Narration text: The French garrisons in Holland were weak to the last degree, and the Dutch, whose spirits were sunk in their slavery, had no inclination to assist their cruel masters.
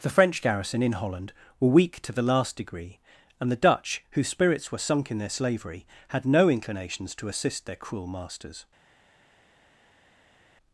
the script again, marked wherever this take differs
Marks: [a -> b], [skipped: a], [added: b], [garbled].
The French [garrisons -> garrison] in Holland were weak to the last degree, and the Dutch, whose spirits were sunk in their slavery, had no [inclination -> inclinations] to assist their cruel masters.